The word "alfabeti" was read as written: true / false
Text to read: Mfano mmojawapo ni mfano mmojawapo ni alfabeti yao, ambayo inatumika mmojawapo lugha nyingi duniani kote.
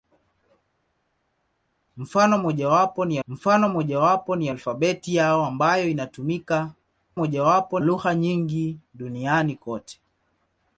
true